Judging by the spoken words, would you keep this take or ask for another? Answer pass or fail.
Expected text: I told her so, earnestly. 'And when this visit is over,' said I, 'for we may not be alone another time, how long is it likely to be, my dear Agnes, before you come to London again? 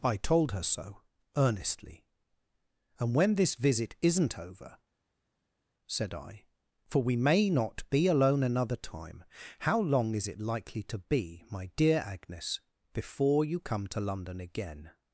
fail